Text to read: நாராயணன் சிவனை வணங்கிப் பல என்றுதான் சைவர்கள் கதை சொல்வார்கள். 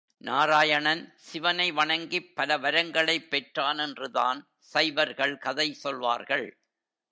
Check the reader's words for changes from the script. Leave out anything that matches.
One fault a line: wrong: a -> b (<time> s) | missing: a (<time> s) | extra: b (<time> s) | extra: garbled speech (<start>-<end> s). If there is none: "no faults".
extra: வரங்களைப் பெற்றான் (2.6 s)